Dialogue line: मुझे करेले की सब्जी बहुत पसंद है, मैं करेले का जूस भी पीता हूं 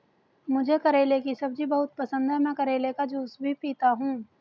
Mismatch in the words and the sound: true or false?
false